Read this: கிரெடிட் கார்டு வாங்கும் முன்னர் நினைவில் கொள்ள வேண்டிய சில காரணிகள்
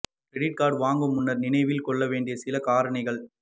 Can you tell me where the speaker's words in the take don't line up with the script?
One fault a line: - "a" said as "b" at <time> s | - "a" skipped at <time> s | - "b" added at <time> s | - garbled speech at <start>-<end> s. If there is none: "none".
none